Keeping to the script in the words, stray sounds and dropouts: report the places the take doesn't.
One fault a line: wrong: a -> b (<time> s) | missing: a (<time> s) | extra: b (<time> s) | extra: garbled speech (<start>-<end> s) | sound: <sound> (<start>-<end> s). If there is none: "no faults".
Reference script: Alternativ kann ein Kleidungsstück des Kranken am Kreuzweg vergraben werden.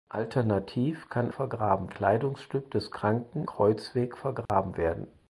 wrong: ein -> vergraben (1.3 s)
missing: am (3.5 s)
sound: dropout (4.5-4.5 s)